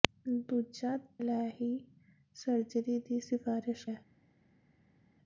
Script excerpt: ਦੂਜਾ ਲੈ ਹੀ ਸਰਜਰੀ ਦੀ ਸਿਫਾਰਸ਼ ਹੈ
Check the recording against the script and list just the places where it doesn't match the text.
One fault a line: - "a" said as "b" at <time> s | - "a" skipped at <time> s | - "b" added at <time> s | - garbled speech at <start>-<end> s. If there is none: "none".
none